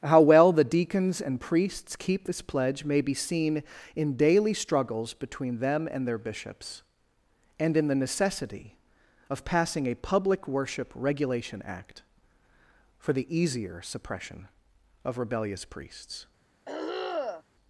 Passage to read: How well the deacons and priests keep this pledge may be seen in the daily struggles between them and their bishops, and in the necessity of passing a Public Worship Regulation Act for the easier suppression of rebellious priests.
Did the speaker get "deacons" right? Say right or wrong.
right